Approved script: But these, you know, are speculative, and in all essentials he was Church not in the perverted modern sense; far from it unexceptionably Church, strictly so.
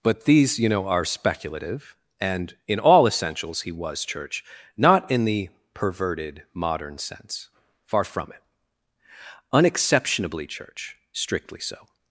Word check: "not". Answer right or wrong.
right